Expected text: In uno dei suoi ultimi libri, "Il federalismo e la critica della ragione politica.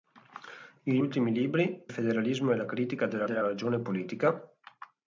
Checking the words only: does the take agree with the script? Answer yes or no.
no